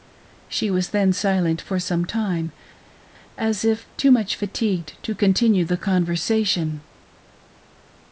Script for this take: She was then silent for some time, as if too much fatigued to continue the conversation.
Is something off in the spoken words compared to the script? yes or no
no